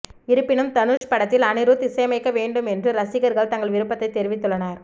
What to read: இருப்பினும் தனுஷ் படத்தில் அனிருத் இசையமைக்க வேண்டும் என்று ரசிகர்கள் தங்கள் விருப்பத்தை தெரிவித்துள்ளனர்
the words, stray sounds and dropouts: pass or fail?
fail